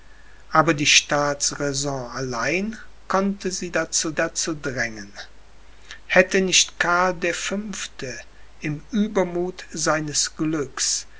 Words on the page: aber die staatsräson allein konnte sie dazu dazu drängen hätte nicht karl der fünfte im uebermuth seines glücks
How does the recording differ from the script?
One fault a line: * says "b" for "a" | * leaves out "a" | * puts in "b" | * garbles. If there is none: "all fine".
all fine